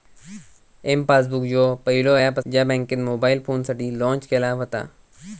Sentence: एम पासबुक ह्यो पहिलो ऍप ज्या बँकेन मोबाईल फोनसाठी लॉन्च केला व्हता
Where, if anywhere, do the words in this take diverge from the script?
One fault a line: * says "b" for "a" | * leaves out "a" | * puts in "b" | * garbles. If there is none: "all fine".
all fine